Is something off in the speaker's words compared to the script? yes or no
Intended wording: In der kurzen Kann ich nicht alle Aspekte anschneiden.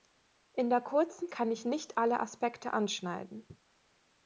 no